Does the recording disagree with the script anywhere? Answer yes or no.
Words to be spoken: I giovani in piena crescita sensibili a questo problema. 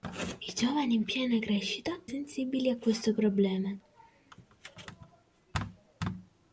no